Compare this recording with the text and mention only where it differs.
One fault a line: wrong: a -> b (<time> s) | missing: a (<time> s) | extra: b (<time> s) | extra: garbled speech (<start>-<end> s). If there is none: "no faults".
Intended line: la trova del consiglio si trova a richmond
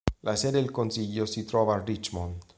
wrong: trova -> sede (0.3 s)